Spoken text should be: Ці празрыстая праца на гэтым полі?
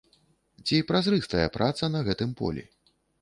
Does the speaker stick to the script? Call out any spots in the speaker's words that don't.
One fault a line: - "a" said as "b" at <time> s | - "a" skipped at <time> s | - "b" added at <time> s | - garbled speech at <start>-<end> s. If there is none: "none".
none